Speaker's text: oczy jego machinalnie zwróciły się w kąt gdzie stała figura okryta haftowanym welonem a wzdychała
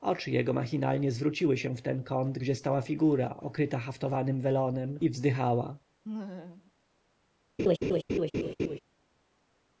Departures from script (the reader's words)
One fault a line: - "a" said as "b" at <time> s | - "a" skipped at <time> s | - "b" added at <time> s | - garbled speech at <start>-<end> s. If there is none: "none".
- "ten" added at 1.8 s
- "a" said as "i" at 5.0 s